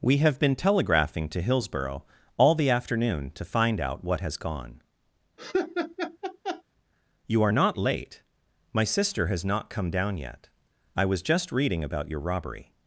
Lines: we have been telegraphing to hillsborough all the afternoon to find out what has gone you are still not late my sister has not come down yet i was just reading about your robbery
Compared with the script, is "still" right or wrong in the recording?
wrong